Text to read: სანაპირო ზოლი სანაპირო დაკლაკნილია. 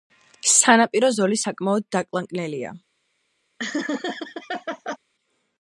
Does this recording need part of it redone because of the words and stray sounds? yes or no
yes